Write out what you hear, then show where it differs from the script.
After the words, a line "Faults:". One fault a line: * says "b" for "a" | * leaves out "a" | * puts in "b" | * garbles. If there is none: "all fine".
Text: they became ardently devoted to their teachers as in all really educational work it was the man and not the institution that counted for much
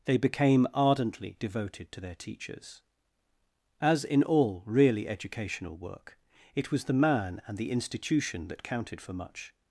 they became ardently devoted to their teachers as in all really educational work it was the man and the institution that counted for much
Faults:
* leaves out "not"